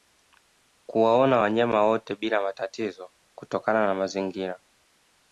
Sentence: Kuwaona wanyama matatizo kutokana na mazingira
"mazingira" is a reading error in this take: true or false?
false